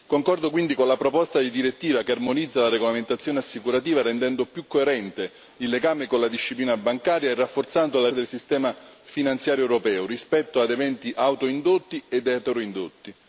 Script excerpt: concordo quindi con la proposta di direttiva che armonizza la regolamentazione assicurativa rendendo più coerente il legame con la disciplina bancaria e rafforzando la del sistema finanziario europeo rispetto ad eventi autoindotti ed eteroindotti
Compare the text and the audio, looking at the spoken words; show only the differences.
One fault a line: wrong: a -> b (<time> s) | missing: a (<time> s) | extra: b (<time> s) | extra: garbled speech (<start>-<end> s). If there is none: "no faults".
no faults